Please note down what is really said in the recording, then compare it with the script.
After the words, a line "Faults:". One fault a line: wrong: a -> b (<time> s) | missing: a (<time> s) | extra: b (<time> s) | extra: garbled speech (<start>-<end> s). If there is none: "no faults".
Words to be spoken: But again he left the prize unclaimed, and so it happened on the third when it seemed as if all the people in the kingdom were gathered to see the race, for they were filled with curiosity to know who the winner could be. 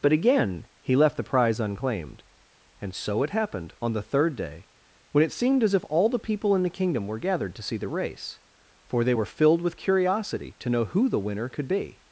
But again he left the prize unclaimed, and so it happened on the third day, when it seemed as if all the people in the kingdom were gathered to see the race, for they were filled with curiosity to know who the winner could be.
Faults:
extra: day (4.3 s)